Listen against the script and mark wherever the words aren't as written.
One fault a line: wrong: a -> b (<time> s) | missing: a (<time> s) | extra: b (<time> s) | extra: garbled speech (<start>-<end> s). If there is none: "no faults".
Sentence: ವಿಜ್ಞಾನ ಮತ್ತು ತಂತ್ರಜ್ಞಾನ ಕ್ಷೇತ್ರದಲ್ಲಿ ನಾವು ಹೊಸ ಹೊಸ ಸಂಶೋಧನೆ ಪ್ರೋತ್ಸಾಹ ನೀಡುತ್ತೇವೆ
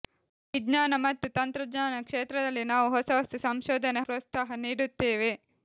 no faults